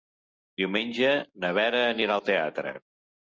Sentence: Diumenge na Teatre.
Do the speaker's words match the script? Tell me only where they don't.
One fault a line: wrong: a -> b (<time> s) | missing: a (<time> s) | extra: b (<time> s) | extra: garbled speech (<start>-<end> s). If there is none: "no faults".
extra: Vera anirà al (1.6 s)